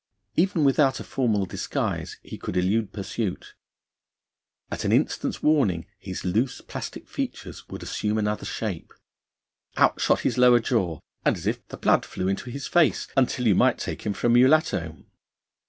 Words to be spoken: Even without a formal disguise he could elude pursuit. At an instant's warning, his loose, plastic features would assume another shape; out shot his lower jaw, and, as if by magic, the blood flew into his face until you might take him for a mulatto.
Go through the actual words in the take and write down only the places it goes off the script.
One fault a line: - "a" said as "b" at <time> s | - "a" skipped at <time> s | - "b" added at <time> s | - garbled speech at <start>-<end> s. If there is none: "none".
- "by magic" skipped at 11.6 s